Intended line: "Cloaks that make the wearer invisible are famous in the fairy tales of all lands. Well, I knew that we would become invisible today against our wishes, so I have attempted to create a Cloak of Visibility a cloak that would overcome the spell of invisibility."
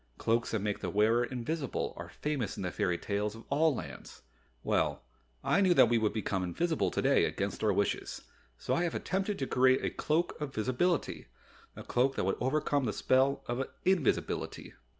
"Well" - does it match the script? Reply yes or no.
yes